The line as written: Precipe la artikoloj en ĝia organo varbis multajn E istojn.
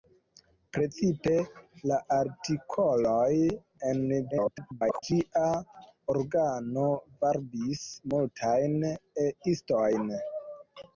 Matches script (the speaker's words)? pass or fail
fail